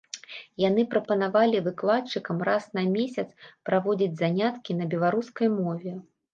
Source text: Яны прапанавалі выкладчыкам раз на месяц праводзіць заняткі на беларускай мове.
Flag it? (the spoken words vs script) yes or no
no